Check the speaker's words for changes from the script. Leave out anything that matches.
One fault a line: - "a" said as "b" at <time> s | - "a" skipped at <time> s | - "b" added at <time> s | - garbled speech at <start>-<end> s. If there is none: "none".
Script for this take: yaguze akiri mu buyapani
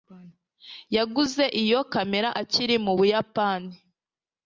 - "iyo kamera" added at 1.6 s